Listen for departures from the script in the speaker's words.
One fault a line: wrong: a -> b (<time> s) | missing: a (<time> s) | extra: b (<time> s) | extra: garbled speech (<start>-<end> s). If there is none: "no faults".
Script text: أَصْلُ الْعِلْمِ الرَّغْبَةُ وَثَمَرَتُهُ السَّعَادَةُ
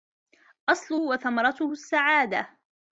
missing: الْعِلْمِ الرَّغْبَةُ (0.9 s)